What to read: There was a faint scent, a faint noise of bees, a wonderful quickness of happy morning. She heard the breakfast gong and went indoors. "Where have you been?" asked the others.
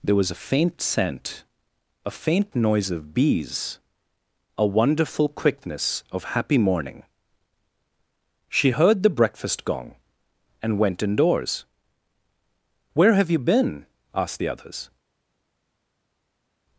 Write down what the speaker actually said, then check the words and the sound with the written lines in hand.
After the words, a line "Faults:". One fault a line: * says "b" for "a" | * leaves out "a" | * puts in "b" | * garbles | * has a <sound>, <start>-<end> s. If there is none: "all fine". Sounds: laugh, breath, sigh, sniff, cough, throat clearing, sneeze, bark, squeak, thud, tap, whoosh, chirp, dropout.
There was a faint scent, a faint noise of bees, a wonderful quickness of happy morning. She heard the breakfast gong and went indoors. "Where have you been?" asked the others.
Faults:
all fine